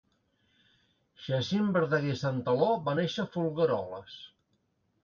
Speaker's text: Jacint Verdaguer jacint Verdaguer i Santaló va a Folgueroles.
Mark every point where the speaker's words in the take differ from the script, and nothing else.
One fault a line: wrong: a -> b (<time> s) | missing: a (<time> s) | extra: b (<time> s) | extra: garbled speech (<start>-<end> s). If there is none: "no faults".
missing: jacint Verdaguer (2.2 s)
extra: néixer (3.0 s)